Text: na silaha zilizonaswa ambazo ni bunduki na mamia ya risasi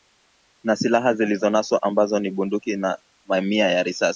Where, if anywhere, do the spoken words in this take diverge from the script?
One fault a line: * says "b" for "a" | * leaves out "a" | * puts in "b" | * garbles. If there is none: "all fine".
all fine